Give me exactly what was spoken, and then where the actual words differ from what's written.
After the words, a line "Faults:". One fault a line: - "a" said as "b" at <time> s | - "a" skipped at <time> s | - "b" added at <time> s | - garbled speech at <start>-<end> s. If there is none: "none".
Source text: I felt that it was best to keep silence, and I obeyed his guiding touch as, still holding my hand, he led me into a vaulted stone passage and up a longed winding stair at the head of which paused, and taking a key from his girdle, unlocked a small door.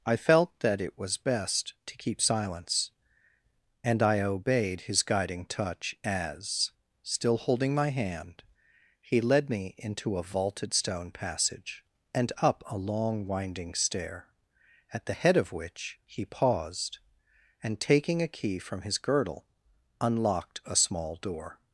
I felt that it was best to keep silence, and I obeyed his guiding touch as, still holding my hand, he led me into a vaulted stone passage and up a long winding stair at the head of which he paused, and taking a key from his girdle, unlocked a small door.
Faults:
- "longed" said as "long" at 12.8 s
- "he" added at 16.1 s